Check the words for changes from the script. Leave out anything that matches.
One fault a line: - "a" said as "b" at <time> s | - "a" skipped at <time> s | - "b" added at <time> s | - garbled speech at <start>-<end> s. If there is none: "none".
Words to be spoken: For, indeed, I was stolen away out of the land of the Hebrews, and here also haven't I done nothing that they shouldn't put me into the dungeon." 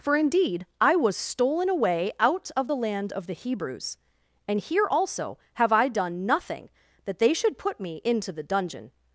- "haven't" said as "have" at 5.5 s
- "shouldn't" said as "should" at 7.3 s